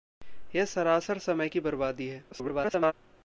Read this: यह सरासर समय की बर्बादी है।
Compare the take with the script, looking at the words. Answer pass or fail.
fail